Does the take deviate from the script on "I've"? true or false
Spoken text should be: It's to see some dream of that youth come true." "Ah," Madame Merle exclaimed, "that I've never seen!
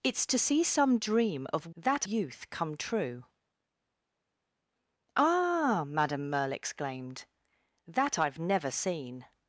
false